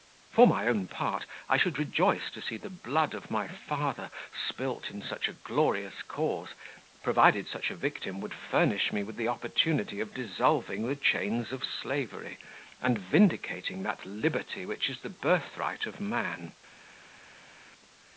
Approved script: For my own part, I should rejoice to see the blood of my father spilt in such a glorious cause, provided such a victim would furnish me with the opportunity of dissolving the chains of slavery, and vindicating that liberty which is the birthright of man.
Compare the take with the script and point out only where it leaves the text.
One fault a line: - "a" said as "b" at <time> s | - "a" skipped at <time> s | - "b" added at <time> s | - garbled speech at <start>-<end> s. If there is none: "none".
none